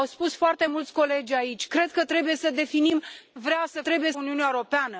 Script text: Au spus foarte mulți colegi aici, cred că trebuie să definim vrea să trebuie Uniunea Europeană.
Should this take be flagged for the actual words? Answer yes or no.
no